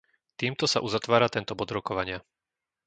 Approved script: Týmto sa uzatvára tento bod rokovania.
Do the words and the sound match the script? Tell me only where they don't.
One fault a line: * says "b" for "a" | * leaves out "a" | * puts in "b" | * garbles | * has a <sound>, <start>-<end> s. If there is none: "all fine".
all fine